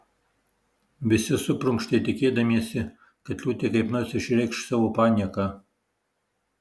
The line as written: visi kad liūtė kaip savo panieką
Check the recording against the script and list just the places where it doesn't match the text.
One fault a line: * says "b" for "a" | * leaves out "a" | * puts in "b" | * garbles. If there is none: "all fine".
* puts in "suprunkštė tikėdamiesi"
* puts in "nors išreikš"